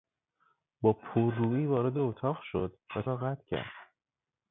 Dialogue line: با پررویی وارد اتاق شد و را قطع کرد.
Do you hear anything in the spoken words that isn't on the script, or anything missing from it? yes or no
no